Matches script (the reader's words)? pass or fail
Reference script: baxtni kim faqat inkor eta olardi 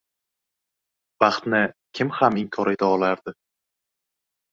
fail